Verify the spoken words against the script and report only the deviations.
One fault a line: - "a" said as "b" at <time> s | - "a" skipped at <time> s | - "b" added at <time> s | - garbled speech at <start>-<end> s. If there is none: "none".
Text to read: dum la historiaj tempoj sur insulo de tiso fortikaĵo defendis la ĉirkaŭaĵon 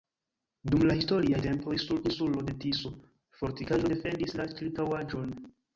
none